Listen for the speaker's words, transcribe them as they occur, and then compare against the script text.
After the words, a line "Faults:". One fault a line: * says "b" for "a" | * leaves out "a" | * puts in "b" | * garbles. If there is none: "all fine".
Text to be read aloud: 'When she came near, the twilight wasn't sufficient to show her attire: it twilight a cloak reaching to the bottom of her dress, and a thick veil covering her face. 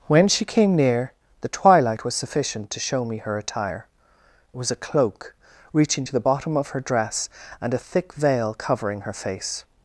'When she came near, the twilight was sufficient to show me her attire: it was a cloak reaching to the bottom of her dress, and a thick veil covering her face.
Faults:
* says "was" for "wasn't"
* puts in "me"
* says "was" for "twilight"